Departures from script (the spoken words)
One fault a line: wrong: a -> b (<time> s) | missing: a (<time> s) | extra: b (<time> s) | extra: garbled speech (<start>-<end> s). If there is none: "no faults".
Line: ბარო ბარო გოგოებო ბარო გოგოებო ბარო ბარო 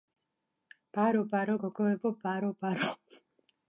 missing: გოგოებო ბარო (2.5 s)